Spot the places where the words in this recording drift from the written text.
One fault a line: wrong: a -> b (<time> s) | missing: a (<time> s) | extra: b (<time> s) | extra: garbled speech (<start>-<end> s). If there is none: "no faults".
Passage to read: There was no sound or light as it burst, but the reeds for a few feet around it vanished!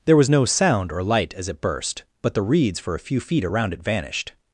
no faults